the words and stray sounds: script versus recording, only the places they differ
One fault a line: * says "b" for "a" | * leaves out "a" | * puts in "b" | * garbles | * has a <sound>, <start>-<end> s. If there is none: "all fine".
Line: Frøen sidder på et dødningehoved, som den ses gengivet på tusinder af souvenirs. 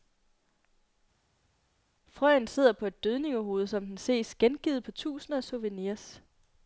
all fine